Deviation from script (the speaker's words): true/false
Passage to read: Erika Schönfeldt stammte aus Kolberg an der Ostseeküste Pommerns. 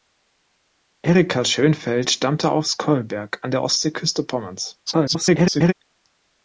true